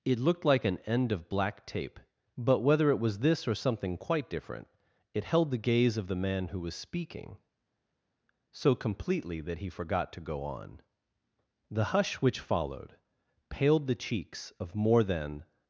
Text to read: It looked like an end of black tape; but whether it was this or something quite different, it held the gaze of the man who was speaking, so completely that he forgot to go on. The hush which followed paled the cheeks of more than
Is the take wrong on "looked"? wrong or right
right